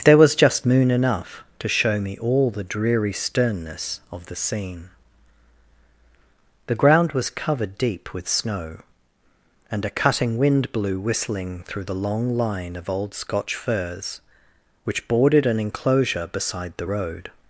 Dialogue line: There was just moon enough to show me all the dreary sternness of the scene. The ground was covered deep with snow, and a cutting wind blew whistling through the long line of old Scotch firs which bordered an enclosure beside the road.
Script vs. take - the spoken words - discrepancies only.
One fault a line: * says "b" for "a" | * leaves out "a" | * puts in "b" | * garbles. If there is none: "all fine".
all fine